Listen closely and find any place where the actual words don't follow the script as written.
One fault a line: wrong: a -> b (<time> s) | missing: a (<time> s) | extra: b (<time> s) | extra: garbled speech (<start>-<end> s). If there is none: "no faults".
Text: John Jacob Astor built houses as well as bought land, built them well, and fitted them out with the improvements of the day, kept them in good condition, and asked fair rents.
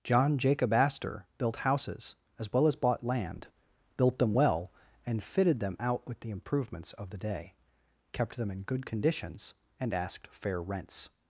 wrong: condition -> conditions (8.8 s)